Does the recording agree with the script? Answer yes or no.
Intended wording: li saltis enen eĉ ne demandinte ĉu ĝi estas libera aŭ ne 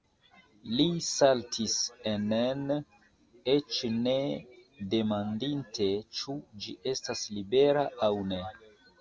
yes